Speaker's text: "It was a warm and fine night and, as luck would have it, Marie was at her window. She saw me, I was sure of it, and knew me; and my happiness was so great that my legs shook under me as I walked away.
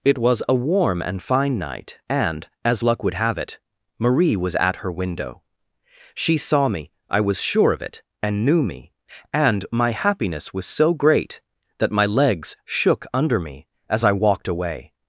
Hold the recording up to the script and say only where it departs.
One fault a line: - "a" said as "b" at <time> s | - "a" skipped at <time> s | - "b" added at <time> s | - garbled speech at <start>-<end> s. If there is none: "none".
none